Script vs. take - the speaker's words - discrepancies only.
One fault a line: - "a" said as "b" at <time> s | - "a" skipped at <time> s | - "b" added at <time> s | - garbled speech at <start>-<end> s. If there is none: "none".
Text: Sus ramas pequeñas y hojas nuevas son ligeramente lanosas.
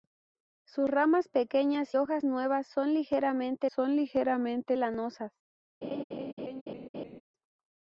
- "y" skipped at 1.9 s
- "son ligeramente" added at 3.7 s